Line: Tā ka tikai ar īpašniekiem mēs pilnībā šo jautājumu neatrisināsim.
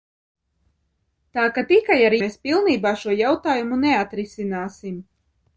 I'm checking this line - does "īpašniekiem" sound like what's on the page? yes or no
no